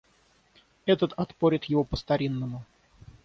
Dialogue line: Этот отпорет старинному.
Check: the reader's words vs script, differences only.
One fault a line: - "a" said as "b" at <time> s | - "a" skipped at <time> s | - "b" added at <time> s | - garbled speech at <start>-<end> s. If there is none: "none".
- "его по" added at 1.6 s